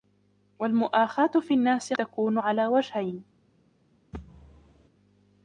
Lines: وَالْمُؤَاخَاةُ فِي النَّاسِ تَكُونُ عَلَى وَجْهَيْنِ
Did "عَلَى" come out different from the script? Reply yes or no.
no